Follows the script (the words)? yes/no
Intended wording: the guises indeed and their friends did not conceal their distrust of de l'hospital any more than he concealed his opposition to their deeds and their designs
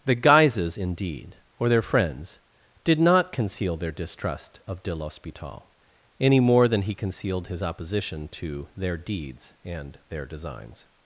no